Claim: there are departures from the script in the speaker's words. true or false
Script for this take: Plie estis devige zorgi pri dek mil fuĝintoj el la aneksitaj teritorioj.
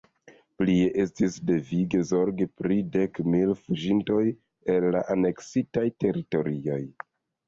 false